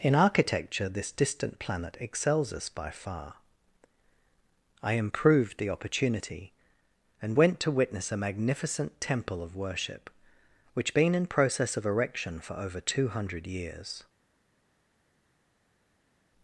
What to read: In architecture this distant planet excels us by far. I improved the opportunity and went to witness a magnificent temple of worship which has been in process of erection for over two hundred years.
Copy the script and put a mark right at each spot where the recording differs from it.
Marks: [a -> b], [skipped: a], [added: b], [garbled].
In architecture this distant planet excels us by far. I improved the opportunity and went to witness a magnificent temple of worship which [skipped: has] been in process of erection for over two hundred years.